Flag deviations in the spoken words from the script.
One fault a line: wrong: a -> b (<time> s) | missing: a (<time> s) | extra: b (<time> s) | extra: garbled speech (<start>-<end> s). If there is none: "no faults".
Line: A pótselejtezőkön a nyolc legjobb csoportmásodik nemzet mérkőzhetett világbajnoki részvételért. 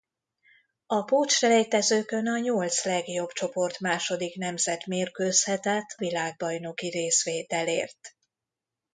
no faults